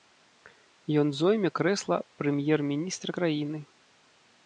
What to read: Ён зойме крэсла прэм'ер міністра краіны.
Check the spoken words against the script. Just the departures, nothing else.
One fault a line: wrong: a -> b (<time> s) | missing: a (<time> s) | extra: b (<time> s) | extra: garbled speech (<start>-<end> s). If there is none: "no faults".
no faults